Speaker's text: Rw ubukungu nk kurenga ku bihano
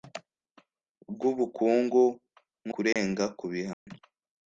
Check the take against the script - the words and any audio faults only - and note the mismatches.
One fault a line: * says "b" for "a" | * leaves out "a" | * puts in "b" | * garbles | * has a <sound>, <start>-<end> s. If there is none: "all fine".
* has a dropout, 2.9-3.0 s
* has a dropout, 3.7-3.9 s